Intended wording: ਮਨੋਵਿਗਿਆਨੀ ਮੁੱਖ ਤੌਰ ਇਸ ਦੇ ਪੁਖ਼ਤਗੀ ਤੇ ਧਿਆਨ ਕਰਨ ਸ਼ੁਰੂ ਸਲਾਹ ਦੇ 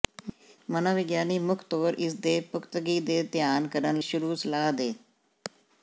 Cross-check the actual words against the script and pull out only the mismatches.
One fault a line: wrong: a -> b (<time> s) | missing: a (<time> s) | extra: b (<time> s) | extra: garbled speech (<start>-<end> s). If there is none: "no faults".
no faults